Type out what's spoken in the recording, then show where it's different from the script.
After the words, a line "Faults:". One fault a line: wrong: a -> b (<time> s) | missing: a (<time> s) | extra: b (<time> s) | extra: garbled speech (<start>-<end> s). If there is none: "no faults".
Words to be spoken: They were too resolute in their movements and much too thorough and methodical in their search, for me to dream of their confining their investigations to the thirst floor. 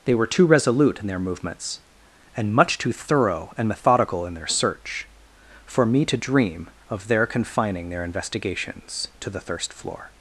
They were too resolute in their movements and much too thorough and methodical in their search, for me to dream of their confining their investigations to the thirst floor.
Faults:
no faults